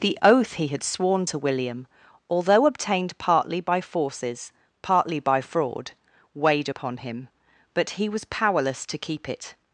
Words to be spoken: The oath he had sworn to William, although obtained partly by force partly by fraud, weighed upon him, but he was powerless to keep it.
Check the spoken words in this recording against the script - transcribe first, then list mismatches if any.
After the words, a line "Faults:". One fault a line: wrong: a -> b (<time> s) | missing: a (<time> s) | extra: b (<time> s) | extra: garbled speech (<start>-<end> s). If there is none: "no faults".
The oath he had sworn to William, although obtained partly by forces partly by fraud, weighed upon him, but he was powerless to keep it.
Faults:
wrong: force -> forces (3.8 s)